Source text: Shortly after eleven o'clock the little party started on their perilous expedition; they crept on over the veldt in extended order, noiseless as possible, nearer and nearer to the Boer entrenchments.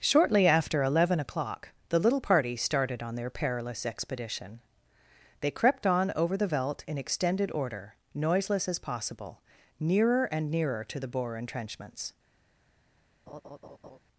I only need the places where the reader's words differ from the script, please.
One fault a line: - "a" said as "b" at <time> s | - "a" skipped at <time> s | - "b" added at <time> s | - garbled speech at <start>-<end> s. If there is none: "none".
none